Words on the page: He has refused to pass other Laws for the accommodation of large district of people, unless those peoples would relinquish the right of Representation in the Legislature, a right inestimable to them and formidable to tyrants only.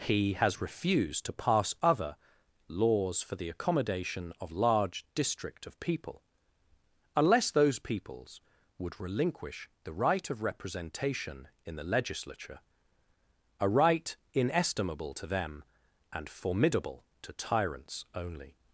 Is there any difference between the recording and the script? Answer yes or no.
no